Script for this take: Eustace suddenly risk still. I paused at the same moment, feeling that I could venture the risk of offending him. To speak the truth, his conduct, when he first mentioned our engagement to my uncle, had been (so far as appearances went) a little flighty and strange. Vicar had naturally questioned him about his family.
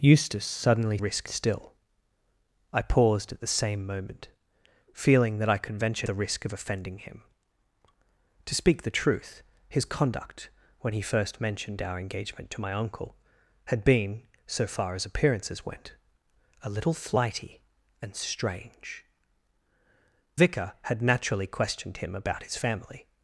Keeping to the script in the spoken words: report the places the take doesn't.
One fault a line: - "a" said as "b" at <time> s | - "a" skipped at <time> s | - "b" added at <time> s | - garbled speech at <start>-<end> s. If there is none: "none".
none